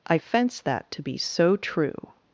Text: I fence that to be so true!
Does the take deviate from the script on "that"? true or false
false